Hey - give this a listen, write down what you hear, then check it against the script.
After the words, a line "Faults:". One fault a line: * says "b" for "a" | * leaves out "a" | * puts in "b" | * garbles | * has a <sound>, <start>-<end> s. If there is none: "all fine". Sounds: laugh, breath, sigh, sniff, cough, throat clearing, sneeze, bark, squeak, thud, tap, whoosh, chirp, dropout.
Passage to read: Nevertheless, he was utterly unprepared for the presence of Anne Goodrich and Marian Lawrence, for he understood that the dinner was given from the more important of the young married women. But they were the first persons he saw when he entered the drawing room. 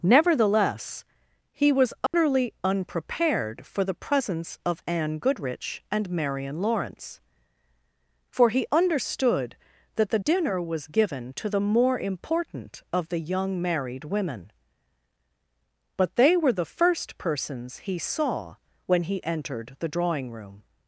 Nevertheless, he was utterly unprepared for the presence of Anne Goodrich and Marian Lawrence, for he understood that the dinner was given to the more important of the young married women. But they were the first persons he saw when he entered the drawing room.
Faults:
* has a dropout, 2.1-2.1 s
* says "to" for "from"